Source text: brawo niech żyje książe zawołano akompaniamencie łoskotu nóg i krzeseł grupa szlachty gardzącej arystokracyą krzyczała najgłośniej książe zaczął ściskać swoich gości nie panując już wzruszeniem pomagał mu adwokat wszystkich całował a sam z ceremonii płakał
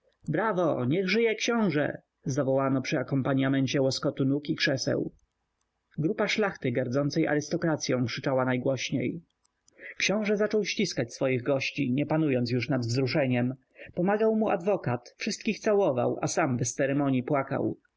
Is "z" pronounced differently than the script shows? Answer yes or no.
yes